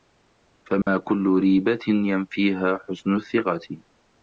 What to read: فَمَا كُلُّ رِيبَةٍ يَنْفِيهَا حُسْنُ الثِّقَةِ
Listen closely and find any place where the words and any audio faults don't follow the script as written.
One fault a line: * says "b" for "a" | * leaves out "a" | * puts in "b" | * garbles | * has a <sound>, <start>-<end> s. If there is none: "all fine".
* has a dropout, 0.8-0.9 s